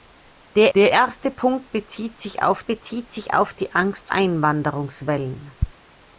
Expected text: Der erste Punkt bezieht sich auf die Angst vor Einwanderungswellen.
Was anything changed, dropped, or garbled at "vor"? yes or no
yes